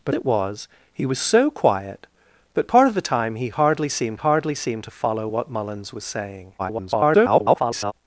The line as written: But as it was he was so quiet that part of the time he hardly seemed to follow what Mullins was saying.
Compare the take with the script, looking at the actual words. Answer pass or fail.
fail